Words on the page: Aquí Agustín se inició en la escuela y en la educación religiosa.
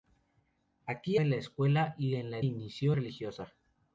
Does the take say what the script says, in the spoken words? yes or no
no